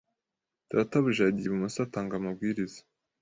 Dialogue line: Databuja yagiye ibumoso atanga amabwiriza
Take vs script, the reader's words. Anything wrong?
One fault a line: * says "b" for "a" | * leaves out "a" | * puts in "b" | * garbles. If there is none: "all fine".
all fine